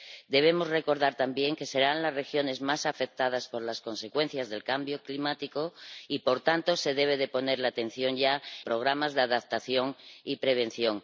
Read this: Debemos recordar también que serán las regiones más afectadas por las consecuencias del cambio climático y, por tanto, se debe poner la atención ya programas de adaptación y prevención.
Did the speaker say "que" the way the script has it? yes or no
yes